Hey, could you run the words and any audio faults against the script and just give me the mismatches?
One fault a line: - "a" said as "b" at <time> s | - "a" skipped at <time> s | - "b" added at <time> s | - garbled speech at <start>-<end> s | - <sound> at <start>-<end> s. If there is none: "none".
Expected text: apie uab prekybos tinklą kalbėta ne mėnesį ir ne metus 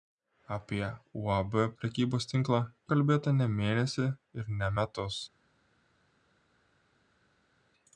none